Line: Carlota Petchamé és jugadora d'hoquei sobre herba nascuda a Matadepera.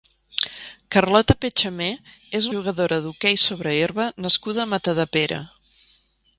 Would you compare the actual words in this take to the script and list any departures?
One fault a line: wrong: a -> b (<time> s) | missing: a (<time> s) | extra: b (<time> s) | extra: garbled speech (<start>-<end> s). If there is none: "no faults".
no faults